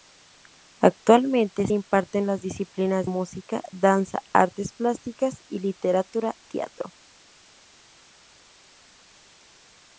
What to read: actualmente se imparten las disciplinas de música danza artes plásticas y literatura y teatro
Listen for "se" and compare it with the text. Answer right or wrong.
wrong